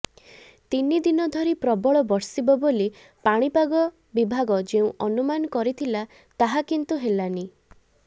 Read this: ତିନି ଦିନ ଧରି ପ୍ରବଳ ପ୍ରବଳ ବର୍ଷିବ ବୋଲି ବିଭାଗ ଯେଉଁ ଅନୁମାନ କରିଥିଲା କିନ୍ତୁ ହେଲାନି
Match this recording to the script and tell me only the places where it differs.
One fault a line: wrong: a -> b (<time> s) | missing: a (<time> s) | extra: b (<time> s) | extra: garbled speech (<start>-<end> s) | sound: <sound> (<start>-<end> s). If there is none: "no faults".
missing: ପ୍ରବଳ (2.0 s)
extra: ପାଣିପାଗ (3.2 s)
extra: ତାହା (6.4 s)